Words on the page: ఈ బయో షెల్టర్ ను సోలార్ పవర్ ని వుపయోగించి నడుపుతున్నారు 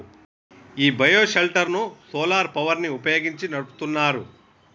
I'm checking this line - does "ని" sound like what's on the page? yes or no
yes